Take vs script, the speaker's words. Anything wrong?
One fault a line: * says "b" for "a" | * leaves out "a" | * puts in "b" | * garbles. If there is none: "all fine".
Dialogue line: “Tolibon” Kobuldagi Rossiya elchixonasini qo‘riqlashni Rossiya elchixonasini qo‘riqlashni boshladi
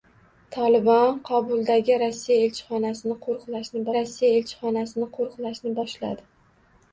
all fine